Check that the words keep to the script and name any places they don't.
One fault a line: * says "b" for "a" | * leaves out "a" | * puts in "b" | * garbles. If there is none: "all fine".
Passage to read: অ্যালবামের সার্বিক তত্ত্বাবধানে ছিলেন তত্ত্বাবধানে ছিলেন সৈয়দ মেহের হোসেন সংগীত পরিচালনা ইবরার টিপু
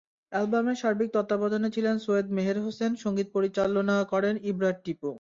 * leaves out "তত্ত্বাবধানে ছিলেন"
* puts in "করেন"